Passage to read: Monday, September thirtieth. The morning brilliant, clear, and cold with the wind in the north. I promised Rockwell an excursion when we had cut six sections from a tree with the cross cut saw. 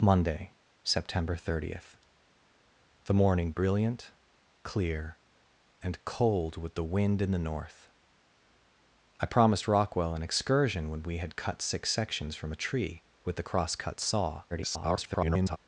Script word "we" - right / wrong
right